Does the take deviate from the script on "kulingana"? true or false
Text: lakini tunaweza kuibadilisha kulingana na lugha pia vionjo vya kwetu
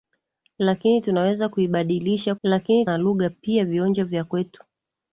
true